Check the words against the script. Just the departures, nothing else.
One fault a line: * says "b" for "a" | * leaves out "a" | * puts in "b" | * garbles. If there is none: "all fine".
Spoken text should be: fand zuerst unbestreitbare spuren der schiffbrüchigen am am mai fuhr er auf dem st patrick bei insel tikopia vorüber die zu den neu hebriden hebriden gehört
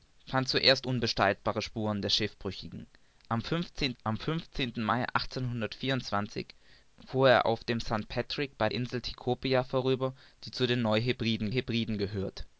all fine